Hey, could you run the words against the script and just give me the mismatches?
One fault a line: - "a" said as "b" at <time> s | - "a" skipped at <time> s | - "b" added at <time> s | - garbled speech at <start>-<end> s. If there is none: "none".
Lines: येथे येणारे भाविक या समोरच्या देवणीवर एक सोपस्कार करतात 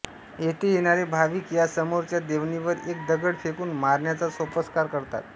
- "दगड फेकून मारण्याचा" added at 3.1 s